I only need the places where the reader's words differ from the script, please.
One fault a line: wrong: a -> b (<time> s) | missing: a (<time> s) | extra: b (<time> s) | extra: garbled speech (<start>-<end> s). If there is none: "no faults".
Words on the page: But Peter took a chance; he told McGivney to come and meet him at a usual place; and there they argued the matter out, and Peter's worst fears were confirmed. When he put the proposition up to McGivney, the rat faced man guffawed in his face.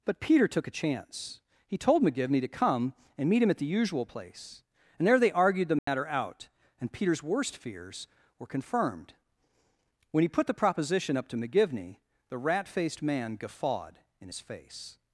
wrong: a -> the (3.6 s)